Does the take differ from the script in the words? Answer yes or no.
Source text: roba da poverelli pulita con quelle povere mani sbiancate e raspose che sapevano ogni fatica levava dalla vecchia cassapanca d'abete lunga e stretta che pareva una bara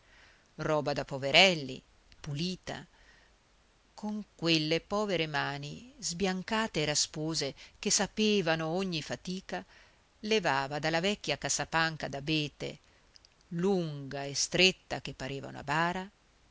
no